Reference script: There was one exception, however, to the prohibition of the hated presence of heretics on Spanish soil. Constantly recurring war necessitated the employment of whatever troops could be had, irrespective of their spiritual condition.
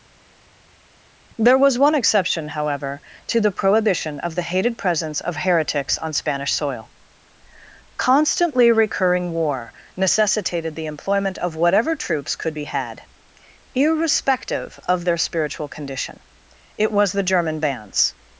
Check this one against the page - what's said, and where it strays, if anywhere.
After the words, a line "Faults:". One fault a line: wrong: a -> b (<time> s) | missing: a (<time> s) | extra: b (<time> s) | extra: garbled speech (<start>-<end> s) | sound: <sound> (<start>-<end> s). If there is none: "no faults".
There was one exception, however, to the prohibition of the hated presence of heretics on Spanish soil. Constantly recurring war necessitated the employment of whatever troops could be had, irrespective of their spiritual condition. It was the German bands
Faults:
extra: It was the German bands (16.8 s)